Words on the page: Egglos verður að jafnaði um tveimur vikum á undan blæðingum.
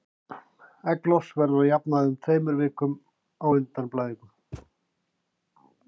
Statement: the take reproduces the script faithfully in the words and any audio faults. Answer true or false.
false